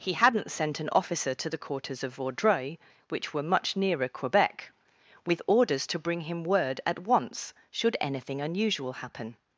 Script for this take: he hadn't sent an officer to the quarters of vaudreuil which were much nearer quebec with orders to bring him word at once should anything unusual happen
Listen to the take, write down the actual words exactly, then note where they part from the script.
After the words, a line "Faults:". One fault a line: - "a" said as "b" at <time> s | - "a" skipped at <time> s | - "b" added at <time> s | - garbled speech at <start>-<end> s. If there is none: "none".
he hadn't sent an officer to the quarters of vaudreuil which were much nearer quebec with orders to bring him word at once should anything unusual happen
Faults:
none